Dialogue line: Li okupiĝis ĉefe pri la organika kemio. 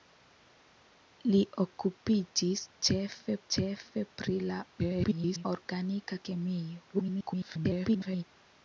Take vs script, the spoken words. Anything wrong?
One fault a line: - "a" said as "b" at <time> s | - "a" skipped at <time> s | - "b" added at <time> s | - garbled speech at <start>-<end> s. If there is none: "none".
- "ĉefe" added at 3.5 s
- garbled speech at 4.8-5.5 s
- garbled speech at 6.9-8.2 s